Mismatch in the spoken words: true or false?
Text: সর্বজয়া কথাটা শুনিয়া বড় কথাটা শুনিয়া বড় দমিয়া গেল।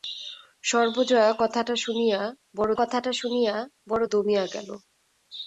false